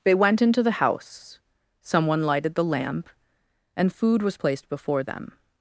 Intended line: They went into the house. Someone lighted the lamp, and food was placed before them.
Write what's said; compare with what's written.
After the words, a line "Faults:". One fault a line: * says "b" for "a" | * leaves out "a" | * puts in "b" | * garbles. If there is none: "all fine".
They went into the house. Someone lighted the lamp, and food was placed before them.
Faults:
all fine